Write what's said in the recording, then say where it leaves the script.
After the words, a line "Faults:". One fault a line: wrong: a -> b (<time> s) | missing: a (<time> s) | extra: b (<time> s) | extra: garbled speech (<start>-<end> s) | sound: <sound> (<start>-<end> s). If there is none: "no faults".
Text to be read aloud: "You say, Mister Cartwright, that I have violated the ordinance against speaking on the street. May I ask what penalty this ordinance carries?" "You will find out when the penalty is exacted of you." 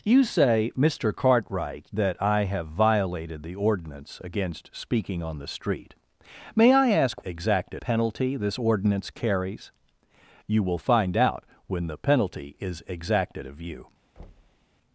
"You say, Mister Cartwright, that I have violated the ordinance against speaking on the street. May I ask exacted penalty this ordinance carries?" "You will find out when the penalty is exacted of you."
Faults:
wrong: what -> exacted (7.2 s)
sound: thud (14.2-14.7 s)